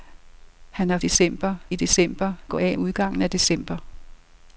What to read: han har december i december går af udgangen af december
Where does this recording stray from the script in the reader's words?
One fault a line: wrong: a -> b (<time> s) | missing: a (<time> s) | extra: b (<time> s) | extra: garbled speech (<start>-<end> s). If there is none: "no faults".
no faults